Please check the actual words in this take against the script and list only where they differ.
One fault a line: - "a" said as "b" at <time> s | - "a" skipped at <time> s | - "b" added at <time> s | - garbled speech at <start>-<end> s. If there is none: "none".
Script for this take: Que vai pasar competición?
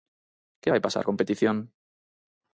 none